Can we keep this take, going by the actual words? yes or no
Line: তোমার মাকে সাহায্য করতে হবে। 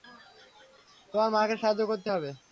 yes